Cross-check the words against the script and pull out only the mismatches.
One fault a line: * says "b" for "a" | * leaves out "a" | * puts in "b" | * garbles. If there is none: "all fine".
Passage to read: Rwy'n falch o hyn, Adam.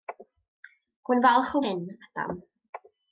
all fine